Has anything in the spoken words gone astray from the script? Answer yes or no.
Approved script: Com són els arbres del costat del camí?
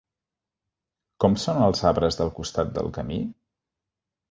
no